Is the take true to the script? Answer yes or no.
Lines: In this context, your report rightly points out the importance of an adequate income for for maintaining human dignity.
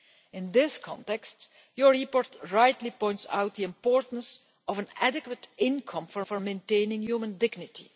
yes